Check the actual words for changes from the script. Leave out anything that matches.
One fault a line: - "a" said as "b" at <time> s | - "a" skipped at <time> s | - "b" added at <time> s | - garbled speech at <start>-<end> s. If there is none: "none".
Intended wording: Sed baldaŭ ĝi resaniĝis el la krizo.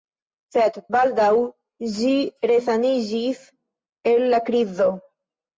none